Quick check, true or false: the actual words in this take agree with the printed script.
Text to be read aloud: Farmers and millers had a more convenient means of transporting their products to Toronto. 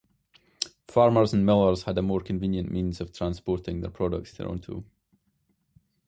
false